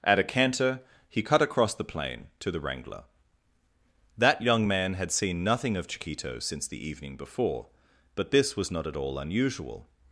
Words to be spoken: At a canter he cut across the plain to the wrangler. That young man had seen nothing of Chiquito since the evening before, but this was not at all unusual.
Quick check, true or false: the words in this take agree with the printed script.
true